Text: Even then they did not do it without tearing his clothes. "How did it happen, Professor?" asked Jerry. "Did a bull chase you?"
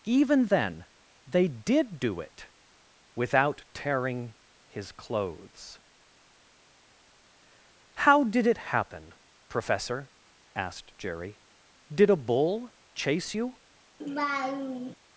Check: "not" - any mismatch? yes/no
yes